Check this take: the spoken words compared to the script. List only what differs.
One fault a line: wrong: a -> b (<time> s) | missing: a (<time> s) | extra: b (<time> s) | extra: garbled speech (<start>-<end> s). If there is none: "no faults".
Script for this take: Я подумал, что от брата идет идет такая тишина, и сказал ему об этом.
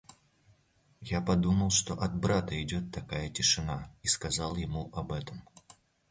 missing: идет (2.9 s)